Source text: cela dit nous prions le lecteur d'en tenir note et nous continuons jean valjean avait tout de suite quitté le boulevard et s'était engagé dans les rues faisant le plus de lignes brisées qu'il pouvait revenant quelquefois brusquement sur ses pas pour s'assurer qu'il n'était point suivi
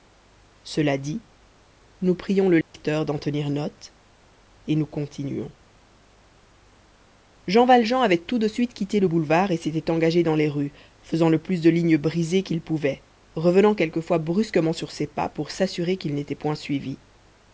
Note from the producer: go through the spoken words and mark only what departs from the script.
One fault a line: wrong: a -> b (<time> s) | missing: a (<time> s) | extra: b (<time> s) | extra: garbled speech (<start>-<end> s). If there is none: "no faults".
no faults